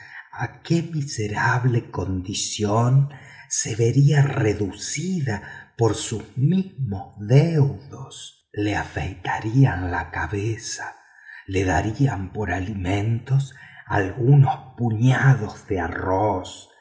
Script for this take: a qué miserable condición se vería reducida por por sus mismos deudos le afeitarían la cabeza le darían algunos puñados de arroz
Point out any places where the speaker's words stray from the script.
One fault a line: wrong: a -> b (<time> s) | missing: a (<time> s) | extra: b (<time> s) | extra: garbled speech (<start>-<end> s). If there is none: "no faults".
missing: por (6.0 s)
extra: por alimentos (12.3 s)